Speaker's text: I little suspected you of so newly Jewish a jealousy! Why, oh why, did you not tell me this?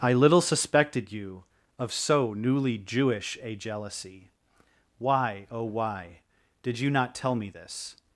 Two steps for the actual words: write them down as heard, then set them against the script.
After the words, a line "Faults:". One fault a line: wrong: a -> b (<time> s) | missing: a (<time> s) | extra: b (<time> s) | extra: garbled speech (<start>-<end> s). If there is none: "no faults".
I little suspected you of so newly Jewish a jealousy! Why, oh why, did you not tell me this?
Faults:
no faults